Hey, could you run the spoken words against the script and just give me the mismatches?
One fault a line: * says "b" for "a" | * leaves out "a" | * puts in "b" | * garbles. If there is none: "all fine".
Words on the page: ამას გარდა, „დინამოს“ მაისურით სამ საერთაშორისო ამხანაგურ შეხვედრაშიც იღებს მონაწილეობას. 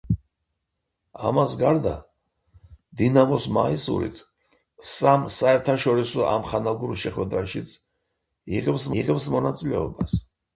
* puts in "იღებს"